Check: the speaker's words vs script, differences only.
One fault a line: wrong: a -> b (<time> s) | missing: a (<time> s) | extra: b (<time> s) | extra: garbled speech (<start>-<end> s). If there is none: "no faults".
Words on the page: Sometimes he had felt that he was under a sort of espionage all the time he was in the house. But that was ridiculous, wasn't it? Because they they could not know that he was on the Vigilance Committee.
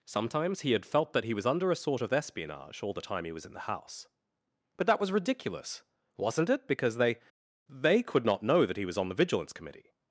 no faults